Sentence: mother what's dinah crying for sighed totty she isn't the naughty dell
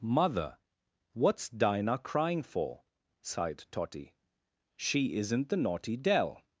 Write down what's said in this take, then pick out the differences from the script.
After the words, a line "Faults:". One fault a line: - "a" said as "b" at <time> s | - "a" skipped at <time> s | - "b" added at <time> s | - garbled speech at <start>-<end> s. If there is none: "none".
mother what's dinah crying for sighed totty she isn't the naughty dell
Faults:
none